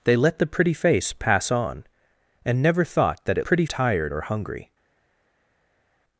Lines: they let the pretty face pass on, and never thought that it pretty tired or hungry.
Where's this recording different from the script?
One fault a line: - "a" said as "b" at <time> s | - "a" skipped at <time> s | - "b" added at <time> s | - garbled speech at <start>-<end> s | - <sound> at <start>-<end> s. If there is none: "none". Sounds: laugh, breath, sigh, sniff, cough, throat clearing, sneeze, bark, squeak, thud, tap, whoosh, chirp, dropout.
none